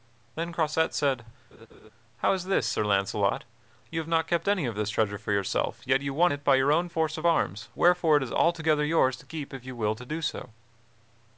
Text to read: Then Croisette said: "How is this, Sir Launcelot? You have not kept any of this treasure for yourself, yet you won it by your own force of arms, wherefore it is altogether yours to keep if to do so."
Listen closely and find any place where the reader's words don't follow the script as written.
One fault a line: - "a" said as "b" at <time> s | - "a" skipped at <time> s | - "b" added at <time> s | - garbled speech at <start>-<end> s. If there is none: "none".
- "you will" added at 9.6 s